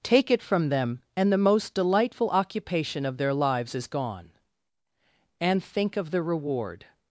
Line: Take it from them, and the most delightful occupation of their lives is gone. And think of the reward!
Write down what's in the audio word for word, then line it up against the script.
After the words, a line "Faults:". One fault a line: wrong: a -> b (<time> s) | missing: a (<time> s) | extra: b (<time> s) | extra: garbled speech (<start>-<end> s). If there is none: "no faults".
Take it from them, and the most delightful occupation of their lives is gone. And think of the reward!
Faults:
no faults